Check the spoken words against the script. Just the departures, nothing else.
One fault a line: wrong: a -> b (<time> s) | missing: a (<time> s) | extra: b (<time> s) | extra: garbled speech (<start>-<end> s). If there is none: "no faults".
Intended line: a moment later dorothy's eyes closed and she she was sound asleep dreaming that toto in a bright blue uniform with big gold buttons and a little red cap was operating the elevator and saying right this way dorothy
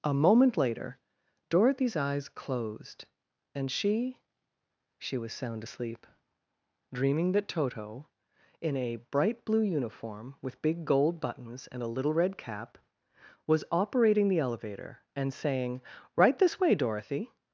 no faults